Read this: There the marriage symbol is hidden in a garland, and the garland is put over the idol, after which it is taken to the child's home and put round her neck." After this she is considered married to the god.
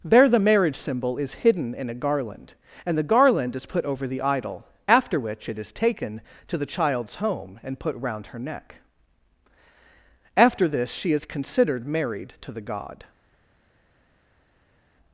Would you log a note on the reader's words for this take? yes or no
no